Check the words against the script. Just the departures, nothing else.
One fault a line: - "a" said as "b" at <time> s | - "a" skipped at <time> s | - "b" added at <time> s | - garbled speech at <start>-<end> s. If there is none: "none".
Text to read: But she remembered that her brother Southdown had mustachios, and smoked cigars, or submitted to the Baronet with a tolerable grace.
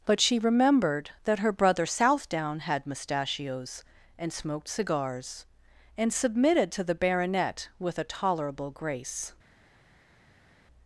- "or" said as "and" at 6.0 s